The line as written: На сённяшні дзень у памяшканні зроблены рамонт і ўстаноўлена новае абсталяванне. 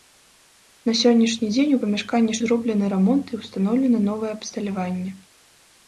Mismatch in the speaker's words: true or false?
false